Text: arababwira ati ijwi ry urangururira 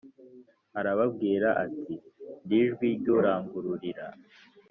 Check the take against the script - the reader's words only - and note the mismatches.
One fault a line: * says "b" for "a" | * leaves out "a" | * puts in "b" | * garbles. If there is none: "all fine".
* puts in "ndi"